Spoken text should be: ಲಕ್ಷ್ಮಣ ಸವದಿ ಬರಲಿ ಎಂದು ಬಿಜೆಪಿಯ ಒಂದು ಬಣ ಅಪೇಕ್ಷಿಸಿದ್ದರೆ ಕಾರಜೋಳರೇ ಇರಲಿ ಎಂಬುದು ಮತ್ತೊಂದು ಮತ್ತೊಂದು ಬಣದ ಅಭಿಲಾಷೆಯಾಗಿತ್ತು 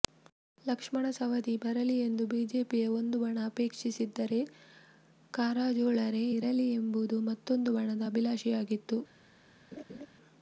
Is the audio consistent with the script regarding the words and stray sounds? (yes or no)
no